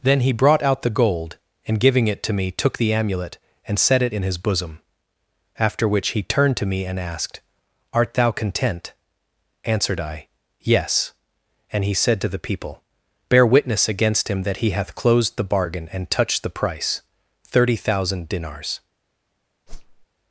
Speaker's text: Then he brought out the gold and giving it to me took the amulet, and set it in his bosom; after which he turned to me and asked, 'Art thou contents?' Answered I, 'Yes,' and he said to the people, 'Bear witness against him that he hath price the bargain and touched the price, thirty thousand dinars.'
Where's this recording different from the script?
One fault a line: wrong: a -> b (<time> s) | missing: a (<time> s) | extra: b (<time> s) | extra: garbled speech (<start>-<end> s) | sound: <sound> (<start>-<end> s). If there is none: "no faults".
wrong: contents -> content (8.3 s)
wrong: price -> closed (14.9 s)
sound: whoosh (19.7-20.1 s)